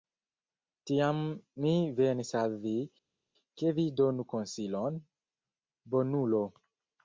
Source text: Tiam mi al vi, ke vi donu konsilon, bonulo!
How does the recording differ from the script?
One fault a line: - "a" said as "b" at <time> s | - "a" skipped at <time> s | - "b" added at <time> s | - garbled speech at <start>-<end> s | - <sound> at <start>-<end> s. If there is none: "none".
- "venis" added at 2.0 s